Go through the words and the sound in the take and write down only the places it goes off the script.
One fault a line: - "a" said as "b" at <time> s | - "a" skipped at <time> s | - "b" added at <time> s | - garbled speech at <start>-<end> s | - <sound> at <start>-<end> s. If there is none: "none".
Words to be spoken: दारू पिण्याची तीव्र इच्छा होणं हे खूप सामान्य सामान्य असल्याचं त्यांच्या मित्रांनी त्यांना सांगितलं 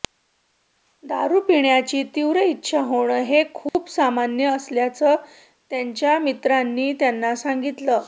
- dropout at 3.7-3.7 s
- "सामान्य" skipped at 4.5 s